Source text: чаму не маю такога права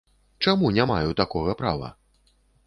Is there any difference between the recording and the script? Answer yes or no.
no